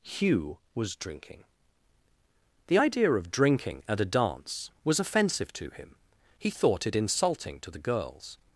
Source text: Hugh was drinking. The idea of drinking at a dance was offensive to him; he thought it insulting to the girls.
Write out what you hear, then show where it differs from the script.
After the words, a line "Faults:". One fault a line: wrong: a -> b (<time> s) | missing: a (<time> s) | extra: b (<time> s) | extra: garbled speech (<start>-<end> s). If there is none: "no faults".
Hugh was drinking. The idea of drinking at a dance was offensive to him; he thought it insulting to the girls.
Faults:
no faults